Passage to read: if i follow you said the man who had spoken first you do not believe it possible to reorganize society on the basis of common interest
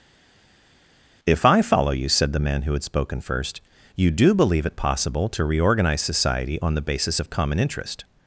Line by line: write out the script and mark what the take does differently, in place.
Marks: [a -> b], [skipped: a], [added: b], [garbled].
if i follow you said the man who had spoken first you do [skipped: not] believe it possible to reorganize society on the basis of common interest